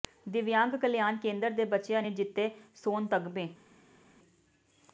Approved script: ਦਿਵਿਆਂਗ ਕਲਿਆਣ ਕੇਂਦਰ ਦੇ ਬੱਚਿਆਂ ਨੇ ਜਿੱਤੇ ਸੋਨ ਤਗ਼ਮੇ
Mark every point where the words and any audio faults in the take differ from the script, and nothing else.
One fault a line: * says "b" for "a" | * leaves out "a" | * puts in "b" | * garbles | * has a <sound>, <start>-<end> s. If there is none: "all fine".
all fine